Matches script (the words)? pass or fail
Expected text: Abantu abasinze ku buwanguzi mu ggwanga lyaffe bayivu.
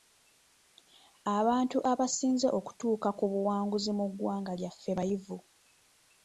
fail